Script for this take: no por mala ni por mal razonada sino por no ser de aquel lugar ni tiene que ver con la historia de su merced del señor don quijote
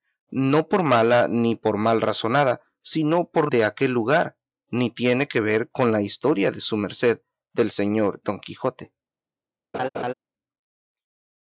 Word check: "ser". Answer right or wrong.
wrong